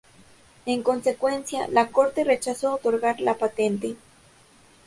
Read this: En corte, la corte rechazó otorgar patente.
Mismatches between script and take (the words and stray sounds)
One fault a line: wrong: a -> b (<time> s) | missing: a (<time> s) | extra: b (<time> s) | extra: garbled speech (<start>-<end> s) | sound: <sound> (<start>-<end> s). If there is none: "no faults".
wrong: corte -> consecuencia (0.8 s)
extra: la (3.2 s)